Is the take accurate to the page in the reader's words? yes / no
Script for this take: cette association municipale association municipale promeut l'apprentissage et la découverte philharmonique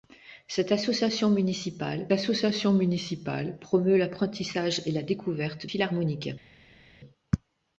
yes